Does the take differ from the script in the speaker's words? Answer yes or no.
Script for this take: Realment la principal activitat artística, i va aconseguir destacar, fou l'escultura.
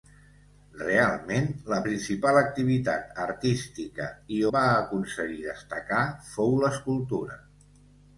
no